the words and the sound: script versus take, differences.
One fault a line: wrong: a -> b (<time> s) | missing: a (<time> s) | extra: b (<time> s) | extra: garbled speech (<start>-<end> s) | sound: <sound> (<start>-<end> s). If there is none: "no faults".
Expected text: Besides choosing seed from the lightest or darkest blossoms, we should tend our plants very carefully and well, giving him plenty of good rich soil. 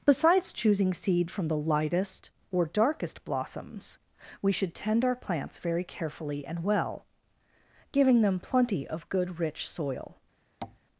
wrong: him -> them (8.2 s)
sound: tap (10.6-10.8 s)